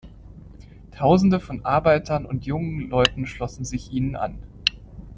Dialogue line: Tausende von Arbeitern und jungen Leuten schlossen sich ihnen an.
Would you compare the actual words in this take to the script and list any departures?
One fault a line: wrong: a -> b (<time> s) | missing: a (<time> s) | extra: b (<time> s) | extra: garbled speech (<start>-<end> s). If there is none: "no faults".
no faults